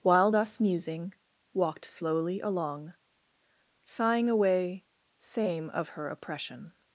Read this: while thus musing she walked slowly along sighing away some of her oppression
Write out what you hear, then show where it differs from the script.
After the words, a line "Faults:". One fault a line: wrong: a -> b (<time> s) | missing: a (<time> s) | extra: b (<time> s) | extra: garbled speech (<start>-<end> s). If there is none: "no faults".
while thus musing walked slowly along sighing away same of her oppression
Faults:
missing: she (1.1 s)
wrong: some -> same (5.2 s)